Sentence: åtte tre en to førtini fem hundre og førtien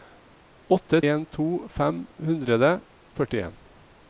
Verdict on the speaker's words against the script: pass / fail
fail